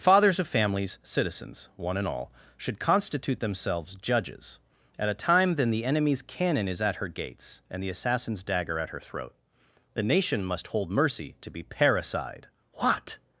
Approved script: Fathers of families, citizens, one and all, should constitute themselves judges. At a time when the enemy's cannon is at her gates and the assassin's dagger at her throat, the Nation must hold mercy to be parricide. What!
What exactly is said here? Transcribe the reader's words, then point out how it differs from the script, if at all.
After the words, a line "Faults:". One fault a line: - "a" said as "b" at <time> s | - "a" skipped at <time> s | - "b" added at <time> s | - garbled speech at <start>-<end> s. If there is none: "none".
Fathers of families, citizens, one and all, should constitute themselves judges. At a time then the enemy's cannon is at her gates and the assassin's dagger at her throat, the Nation must hold mercy to be parricide. What!
Faults:
- "when" said as "then" at 5.5 s